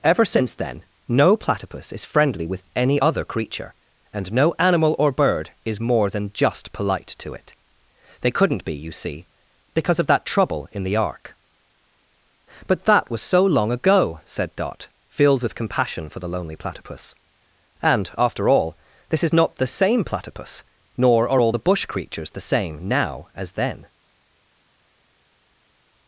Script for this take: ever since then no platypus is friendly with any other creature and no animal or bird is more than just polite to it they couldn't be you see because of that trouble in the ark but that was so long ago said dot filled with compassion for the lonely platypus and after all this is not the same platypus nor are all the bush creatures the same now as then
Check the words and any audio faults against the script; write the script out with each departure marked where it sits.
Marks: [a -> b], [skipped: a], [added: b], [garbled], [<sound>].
ever since then no platypus is friendly with any other creature and no animal or bird is more than just polite to it they couldn't be you see because of that trouble in the ark but that was so long ago said dot filled with compassion for the lonely platypus and after all this is not the same platypus nor are all the bush creatures the same now as then